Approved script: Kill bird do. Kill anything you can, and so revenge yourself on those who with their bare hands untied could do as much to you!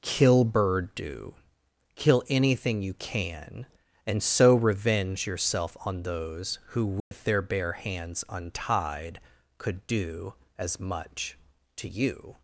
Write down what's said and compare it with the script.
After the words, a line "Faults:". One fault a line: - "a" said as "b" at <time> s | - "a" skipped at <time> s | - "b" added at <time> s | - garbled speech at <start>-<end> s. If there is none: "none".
Kill bird do. Kill anything you can, and so revenge yourself on those who with their bare hands untied could do as much to you!
Faults:
none